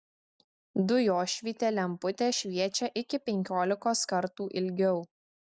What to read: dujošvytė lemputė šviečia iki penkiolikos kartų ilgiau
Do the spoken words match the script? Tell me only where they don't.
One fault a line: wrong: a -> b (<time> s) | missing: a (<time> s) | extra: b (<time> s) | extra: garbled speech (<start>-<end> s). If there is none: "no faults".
no faults